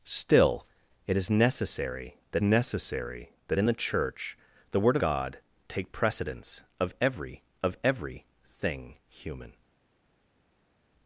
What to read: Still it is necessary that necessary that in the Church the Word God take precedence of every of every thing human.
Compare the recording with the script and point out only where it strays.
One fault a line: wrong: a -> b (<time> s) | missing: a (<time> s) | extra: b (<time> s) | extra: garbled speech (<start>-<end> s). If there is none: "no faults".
no faults